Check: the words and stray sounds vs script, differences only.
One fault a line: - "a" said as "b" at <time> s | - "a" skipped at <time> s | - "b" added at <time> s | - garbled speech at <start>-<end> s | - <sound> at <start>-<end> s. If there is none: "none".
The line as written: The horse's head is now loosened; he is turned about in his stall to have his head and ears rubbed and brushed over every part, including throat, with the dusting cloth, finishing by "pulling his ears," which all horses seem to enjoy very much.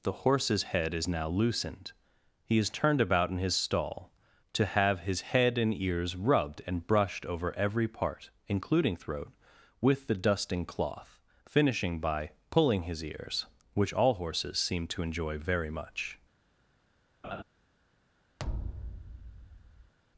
- laugh at 17.2-17.4 s
- thud at 18.4-19.9 s